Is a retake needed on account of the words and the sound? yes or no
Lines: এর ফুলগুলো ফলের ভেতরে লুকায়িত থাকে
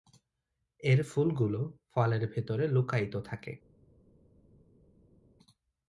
no